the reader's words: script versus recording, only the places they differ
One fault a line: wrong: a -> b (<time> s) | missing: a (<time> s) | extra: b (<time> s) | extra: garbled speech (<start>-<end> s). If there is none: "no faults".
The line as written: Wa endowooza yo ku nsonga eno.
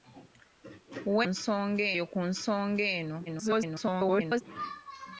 wrong: endowooza -> nsonga (1.3 s)
extra: garbled speech (3.3-4.4 s)